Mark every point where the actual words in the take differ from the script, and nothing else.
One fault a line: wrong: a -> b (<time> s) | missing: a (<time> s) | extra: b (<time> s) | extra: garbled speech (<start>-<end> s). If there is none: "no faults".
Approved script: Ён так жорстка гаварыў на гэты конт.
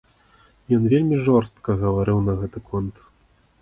wrong: так -> вельмі (0.9 s)